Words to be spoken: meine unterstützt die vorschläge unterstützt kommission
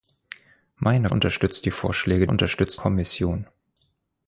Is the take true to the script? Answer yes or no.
yes